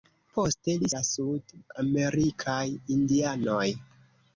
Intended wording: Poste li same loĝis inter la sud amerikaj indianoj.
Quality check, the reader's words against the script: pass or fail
fail